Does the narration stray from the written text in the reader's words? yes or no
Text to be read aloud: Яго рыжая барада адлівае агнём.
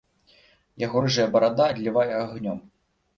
no